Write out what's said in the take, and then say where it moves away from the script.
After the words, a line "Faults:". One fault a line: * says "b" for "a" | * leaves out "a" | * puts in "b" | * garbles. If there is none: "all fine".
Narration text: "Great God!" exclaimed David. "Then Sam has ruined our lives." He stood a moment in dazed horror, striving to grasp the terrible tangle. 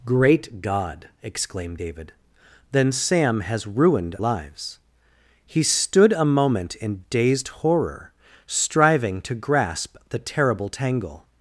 "Great God!" exclaimed David. "Then Sam has ruined lives." He stood a moment in dazed horror, striving to grasp the terrible tangle.
Faults:
* leaves out "our"